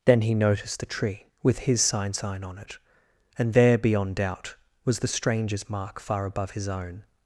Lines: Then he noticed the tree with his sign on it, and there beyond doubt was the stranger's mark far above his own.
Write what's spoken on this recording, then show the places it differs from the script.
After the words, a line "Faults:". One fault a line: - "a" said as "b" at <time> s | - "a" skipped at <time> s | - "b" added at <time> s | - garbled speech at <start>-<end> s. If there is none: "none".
Then he noticed the tree with his sign sign on it, and there beyond doubt was the stranger's mark far above his own.
Faults:
- "sign" added at 2.1 s